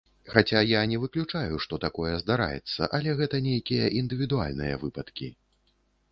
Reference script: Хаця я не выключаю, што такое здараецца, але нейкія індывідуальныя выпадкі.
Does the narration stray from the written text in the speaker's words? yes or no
yes